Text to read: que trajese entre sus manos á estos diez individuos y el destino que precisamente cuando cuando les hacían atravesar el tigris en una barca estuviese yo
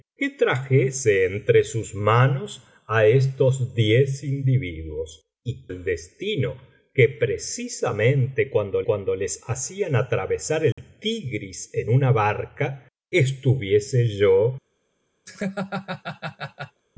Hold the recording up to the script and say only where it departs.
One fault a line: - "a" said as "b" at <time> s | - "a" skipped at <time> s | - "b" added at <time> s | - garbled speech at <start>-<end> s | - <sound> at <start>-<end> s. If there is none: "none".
- dropout at 10.7-10.8 s
- laugh at 15.3-16.8 s